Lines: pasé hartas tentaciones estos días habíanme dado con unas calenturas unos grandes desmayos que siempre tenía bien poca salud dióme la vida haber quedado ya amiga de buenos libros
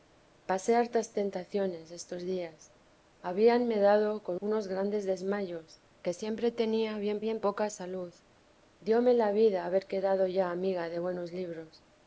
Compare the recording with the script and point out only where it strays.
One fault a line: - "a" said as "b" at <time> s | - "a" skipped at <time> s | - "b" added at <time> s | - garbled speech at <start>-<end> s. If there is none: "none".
- "unas calenturas" skipped at 4.4 s
- "bien" added at 7.2 s